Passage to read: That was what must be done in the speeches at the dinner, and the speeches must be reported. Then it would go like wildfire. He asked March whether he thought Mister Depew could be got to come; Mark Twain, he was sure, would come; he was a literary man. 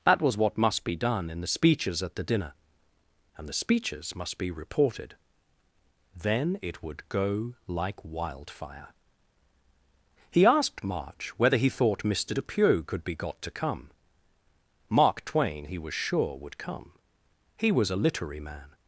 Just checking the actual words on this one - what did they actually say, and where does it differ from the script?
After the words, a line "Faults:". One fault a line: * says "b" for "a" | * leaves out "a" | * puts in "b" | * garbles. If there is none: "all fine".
That was what must be done in the speeches at the dinner, and the speeches must be reported. Then it would go like wildfire. He asked March whether he thought Mister Depew could be got to come; Mark Twain, he was sure, would come; he was a literary man.
Faults:
all fine